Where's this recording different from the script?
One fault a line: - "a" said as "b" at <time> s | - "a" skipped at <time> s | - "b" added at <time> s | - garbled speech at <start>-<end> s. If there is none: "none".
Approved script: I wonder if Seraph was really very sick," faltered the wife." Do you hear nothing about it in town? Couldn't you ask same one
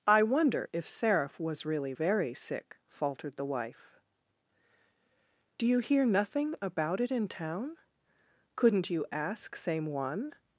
none